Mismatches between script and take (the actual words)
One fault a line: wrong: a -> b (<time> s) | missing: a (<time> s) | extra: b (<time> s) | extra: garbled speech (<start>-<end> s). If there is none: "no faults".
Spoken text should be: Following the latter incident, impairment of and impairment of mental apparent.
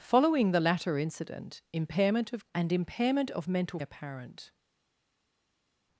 no faults